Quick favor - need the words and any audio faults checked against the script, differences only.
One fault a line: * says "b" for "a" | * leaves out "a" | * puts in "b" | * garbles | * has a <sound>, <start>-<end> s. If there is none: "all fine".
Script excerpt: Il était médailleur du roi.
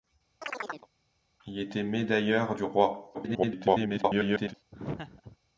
* has a chirp, 0.4-0.9 s
* garbles
* has a laugh, 4.7-5.4 s